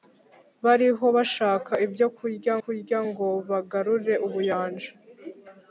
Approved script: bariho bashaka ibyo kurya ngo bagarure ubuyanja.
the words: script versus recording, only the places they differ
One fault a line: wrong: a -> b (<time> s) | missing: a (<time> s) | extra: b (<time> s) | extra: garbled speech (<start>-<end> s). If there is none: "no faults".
extra: kurya (2.6 s)